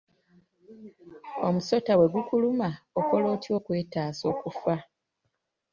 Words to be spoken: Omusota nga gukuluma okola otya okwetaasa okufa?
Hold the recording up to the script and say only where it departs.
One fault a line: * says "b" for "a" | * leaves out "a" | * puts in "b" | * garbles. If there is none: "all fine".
* says "bwe" for "nga"